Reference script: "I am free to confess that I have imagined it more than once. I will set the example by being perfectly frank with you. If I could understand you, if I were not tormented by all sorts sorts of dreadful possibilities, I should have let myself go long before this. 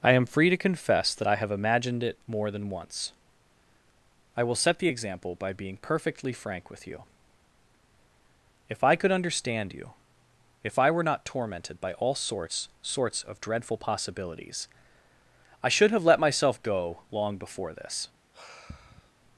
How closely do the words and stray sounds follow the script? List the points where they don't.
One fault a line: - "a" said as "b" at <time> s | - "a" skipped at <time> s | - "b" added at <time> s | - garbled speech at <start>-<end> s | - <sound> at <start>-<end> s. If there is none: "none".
- sigh at 18.3-19.1 s